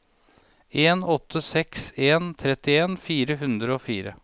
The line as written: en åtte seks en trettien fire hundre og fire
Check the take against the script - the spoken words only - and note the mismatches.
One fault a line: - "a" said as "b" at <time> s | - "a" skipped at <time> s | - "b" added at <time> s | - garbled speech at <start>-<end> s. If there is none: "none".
none